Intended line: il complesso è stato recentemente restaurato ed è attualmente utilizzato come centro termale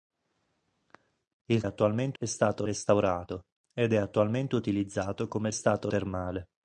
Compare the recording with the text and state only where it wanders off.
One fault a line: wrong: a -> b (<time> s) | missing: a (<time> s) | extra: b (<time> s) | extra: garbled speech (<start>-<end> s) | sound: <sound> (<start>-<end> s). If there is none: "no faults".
wrong: complesso -> attualmente (1.6 s)
missing: recentemente (2.6 s)
wrong: centro -> stato (5.5 s)